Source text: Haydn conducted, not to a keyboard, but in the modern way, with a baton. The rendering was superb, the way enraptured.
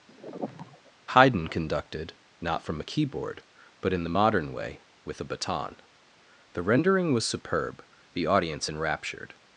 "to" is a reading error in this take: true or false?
true